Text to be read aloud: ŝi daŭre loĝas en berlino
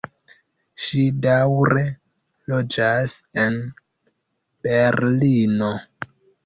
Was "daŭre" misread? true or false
false